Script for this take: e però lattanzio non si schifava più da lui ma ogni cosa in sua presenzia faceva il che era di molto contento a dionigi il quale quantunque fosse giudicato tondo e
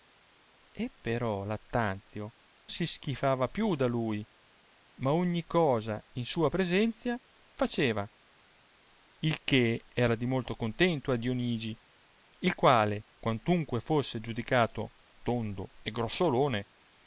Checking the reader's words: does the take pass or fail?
fail